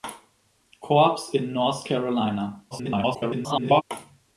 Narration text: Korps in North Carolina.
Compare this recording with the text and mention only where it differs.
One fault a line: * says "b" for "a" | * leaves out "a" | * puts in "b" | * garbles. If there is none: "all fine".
* garbles